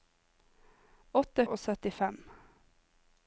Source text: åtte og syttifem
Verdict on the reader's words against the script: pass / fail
pass